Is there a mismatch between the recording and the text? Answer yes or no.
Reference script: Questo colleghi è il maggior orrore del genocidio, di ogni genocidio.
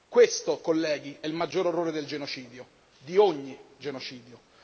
no